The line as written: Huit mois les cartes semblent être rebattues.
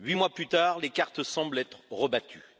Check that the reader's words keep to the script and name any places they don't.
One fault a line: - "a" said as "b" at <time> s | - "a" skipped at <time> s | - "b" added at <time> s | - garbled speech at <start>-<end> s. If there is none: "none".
- "plus tard" added at 0.3 s